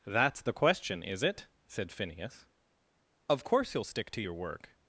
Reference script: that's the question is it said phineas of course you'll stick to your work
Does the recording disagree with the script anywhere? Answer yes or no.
no